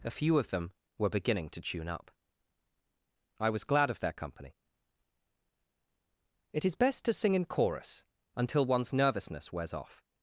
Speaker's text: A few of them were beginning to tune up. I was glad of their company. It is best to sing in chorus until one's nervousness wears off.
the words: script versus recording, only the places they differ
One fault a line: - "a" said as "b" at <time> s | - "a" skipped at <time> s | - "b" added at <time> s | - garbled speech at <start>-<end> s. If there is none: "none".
none